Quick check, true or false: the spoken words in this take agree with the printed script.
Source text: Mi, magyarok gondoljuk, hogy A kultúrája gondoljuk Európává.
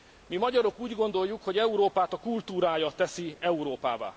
false